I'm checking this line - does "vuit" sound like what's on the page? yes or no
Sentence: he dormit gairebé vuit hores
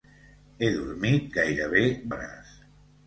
no